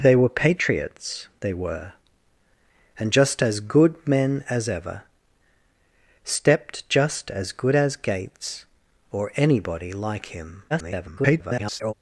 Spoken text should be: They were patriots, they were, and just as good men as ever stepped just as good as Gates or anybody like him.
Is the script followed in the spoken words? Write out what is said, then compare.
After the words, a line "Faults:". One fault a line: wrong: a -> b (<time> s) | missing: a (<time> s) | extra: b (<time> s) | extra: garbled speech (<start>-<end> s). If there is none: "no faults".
They were patriots, they were, and just as good men as ever stepped just as good as Gates or anybody like him. [garbled]
Faults:
extra: garbled speech (10.7-11.9 s)